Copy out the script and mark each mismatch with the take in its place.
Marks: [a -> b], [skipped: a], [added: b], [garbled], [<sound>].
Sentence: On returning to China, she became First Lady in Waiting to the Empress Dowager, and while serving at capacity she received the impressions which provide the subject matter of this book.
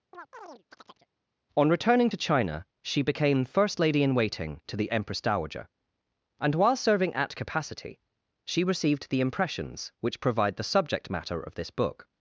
[chirp] On returning to China, she became First Lady in Waiting to the Empress Dowager, and while serving at capacity she received the impressions which provide the subject matter of this book.